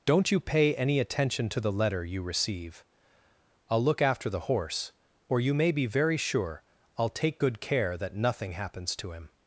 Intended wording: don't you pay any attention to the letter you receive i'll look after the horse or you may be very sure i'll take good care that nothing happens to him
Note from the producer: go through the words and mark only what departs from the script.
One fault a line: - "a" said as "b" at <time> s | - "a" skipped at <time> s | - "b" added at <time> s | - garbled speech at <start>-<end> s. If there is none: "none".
none